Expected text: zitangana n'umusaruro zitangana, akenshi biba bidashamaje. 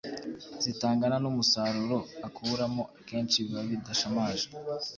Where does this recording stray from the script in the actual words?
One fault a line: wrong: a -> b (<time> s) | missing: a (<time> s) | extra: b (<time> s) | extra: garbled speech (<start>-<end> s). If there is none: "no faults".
wrong: zitangana -> akuramo (2.3 s)